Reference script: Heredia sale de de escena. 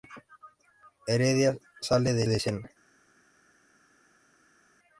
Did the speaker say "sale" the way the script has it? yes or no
yes